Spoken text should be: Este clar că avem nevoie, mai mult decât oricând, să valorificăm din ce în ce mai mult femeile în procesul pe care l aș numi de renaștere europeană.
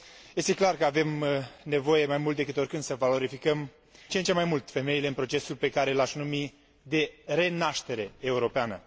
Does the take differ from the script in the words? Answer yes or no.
yes